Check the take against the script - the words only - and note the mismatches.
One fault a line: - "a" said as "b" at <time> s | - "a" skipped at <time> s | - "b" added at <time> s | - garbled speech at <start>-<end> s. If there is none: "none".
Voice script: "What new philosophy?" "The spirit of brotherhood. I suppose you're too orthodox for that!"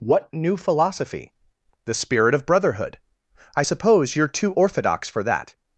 none